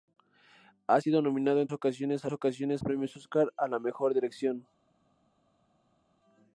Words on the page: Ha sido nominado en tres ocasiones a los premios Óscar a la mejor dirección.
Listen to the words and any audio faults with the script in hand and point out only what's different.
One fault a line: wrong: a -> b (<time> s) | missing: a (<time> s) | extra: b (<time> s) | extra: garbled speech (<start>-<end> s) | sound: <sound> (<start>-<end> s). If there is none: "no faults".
missing: tres (1.7 s)
wrong: los -> ocasiones (2.3 s)